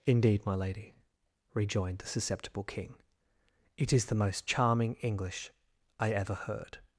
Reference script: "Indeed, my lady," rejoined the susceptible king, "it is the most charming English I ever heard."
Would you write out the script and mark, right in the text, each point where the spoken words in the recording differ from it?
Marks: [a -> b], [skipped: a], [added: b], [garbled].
"Indeed, my lady," rejoined the susceptible king, "it is the most charming English I ever heard."